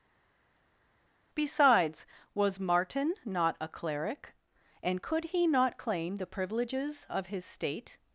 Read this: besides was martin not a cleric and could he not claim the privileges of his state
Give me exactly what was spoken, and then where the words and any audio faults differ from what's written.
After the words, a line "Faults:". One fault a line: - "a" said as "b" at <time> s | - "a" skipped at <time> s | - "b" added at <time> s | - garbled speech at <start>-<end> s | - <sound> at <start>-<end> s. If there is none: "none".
besides was martin not a cleric and could he not claim the privileges of his state
Faults:
none